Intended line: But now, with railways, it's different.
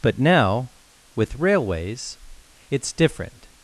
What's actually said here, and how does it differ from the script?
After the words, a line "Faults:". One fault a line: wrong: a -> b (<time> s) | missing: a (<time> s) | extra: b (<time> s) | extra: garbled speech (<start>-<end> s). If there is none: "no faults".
But now, with railways, it's different.
Faults:
no faults